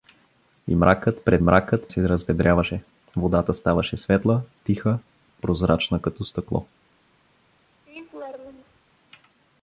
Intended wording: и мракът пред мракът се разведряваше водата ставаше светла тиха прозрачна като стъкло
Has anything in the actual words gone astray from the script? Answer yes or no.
no